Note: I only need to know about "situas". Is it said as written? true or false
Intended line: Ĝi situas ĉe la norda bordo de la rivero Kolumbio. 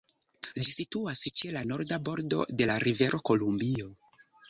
true